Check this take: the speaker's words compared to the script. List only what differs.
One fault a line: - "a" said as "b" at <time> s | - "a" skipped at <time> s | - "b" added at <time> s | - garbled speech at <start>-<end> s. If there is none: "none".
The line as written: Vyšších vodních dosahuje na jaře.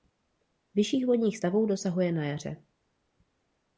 - "stavů" added at 1.3 s